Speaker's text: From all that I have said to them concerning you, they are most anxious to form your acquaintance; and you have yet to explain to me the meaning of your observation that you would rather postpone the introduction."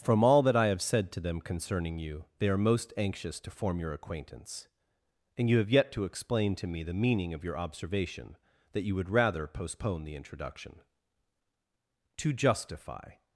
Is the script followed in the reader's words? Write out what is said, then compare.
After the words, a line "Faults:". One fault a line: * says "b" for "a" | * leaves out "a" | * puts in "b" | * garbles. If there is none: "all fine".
From all that I have said to them concerning you, they are most anxious to form your acquaintance; and you have yet to explain to me the meaning of your observation that you would rather postpone the introduction." "To justify
Faults:
* puts in "To justify"